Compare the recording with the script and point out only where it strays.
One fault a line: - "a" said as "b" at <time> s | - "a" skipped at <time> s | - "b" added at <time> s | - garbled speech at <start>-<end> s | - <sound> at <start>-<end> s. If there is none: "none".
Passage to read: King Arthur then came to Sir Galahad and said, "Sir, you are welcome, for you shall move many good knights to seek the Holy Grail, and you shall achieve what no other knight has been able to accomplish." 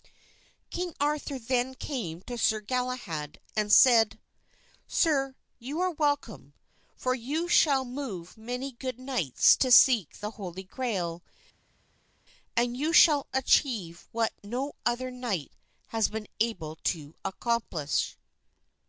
none